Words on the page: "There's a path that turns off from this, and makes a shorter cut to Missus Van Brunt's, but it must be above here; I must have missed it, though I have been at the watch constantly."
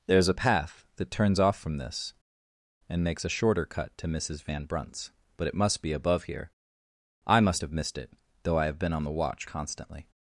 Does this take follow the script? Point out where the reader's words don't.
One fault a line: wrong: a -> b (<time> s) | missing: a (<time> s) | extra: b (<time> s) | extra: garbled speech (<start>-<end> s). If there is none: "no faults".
wrong: at -> on (8.9 s)